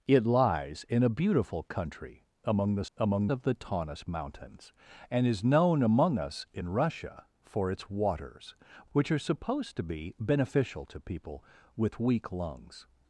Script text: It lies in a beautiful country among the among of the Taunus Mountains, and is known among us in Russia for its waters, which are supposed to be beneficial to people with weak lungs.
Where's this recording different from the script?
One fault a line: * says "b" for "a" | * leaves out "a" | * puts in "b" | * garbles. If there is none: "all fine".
all fine